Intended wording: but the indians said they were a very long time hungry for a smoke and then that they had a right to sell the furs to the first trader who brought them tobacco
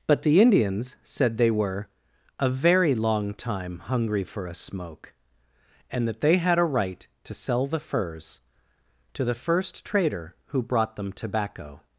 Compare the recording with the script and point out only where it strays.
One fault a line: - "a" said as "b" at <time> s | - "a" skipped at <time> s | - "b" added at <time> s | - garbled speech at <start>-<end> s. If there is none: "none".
- "then" skipped at 6.1 s